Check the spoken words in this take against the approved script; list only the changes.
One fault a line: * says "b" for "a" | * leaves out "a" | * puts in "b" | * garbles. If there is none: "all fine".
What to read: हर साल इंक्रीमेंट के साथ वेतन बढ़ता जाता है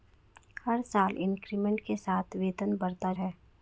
* leaves out "जाता"